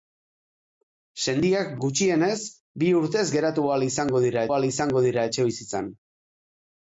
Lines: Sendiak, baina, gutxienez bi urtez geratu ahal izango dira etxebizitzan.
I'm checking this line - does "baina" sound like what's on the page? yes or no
no